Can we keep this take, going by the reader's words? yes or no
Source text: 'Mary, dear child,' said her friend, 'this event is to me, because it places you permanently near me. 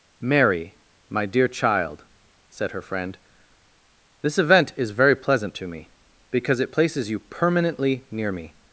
no